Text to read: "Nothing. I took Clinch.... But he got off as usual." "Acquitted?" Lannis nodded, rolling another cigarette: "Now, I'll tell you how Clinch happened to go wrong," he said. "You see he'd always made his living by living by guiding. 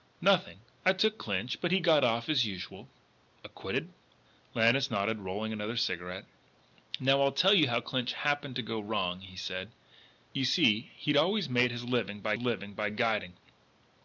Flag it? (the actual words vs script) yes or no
no